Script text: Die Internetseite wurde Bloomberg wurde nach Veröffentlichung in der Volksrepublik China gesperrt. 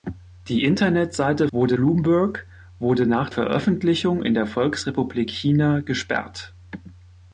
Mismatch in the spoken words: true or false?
false